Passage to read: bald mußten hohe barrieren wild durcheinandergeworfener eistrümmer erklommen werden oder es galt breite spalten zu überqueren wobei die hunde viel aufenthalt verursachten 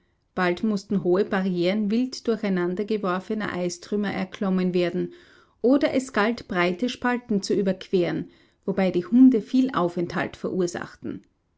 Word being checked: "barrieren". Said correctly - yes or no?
yes